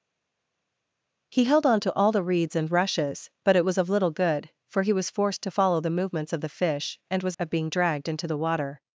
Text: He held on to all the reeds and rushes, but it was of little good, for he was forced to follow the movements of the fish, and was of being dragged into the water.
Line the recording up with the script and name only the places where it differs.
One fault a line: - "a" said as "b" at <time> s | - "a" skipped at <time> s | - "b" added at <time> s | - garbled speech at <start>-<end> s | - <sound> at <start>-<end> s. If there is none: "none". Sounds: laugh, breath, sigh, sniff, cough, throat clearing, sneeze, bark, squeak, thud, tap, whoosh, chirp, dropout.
none